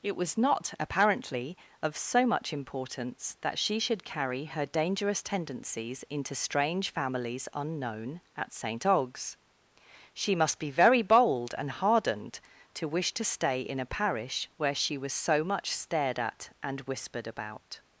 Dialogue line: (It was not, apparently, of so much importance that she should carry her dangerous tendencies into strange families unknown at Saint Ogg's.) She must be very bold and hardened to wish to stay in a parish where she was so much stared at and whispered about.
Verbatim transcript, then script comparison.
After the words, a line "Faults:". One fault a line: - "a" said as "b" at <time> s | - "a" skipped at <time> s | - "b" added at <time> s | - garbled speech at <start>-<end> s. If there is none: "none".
(It was not, apparently, of so much importance that she should carry her dangerous tendencies into strange families unknown at Saint Ogg's.) She must be very bold and hardened to wish to stay in a parish where she was so much stared at and whispered about.
Faults:
none